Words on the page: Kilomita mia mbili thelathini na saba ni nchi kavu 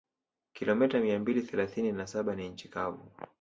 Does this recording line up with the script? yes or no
yes